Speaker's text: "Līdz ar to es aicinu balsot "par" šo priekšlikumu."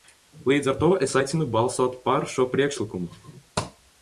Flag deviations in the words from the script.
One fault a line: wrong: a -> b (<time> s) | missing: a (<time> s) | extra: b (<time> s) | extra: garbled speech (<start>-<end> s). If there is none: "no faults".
no faults